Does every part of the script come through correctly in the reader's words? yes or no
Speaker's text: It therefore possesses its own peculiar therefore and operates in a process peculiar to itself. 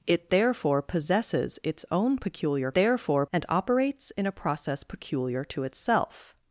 yes